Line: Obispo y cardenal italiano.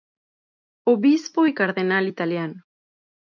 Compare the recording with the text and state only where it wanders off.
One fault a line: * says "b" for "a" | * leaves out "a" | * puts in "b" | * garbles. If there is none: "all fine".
all fine